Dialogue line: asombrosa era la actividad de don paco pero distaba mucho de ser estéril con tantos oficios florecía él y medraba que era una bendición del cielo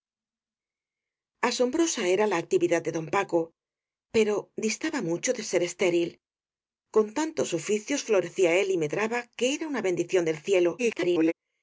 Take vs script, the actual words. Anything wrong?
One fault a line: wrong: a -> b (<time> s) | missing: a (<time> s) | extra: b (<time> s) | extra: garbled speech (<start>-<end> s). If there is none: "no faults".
extra: garbled speech (10.8-11.3 s)